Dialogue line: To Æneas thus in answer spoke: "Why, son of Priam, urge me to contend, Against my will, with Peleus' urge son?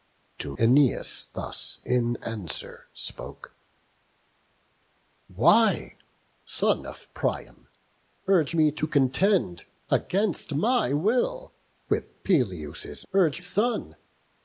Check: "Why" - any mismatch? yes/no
no